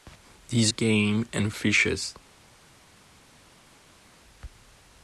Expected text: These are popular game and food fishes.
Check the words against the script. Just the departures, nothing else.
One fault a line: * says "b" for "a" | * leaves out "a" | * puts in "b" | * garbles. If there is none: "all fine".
* leaves out "are popular"
* leaves out "food"